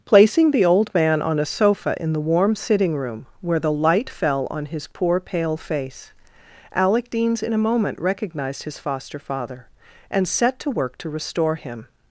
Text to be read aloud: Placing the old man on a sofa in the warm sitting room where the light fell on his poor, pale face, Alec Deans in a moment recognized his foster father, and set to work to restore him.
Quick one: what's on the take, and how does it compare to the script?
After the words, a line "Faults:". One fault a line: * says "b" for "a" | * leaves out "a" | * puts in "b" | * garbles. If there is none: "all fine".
Placing the old man on a sofa in the warm sitting room where the light fell on his poor, pale face, Alec Deans in a moment recognized his foster father, and set to work to restore him.
Faults:
all fine